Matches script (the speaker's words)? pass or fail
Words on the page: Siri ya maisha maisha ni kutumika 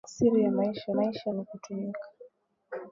pass